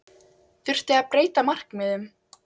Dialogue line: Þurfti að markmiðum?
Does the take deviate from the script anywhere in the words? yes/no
yes